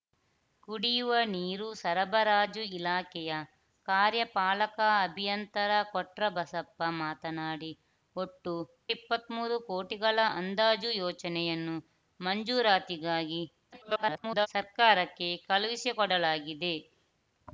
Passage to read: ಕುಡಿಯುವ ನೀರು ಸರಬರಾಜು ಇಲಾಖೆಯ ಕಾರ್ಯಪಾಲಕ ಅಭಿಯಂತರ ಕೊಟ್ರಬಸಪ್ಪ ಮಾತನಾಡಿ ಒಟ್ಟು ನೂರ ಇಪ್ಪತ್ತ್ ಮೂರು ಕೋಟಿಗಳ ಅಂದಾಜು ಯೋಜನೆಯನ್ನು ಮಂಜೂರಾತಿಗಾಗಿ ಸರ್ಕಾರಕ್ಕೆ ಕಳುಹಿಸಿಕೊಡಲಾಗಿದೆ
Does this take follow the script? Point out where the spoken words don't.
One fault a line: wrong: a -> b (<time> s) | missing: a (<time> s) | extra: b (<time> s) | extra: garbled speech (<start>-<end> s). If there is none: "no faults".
missing: ನೂರ (8.5 s)
extra: garbled speech (13.7-14.5 s)